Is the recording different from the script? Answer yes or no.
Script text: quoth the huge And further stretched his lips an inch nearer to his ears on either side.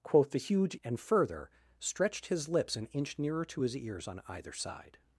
no